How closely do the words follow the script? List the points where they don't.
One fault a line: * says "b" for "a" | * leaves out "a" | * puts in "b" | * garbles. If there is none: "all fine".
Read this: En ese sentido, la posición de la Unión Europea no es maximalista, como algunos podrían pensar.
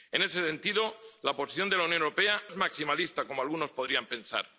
* leaves out "no"